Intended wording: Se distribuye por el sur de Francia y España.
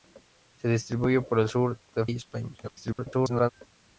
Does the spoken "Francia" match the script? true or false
false